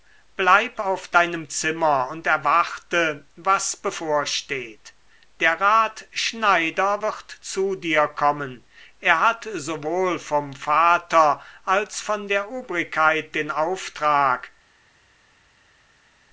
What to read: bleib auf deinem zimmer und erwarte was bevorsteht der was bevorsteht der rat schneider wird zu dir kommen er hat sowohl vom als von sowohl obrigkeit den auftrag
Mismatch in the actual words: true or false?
true